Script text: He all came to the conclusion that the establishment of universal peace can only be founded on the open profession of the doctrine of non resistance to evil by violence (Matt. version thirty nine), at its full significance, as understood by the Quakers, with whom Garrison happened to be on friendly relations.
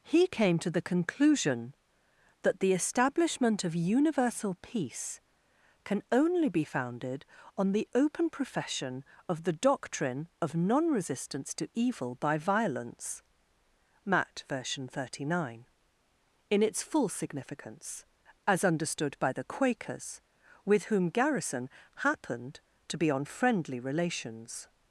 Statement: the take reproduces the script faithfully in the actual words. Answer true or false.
false